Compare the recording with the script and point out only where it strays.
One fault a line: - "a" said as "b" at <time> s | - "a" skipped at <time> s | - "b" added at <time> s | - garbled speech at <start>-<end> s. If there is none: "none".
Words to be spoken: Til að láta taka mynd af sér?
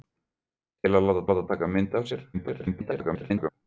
- "láta" added at 1.3 s
- garbled speech at 2.3-3.5 s